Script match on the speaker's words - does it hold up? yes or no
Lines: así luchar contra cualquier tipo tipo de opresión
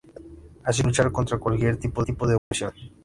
yes